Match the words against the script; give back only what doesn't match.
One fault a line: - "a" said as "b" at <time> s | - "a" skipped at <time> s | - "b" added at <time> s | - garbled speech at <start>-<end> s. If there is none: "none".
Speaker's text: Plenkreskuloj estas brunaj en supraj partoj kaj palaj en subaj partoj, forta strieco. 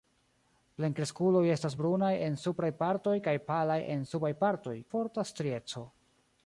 none